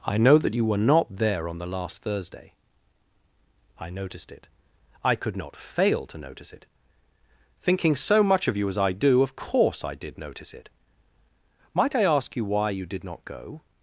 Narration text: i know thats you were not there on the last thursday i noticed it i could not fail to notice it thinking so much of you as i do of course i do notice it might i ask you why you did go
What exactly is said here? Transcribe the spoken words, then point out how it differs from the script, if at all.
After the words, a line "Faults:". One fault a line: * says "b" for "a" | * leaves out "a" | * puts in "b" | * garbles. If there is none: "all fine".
i know that you were not there on the last thursday i noticed it i could not fail to notice it thinking so much of you as i do of course i did notice it might i ask you why you did not go
Faults:
* says "that" for "thats"
* says "did" for "do"
* puts in "not"